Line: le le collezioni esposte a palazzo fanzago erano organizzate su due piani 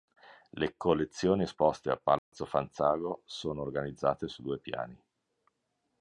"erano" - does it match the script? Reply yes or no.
no